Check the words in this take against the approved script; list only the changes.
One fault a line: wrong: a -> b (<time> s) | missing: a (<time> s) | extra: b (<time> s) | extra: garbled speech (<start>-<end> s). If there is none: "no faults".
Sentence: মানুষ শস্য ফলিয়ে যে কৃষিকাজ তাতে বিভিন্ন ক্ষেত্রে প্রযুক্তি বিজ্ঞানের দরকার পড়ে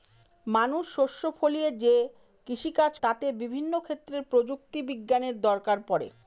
no faults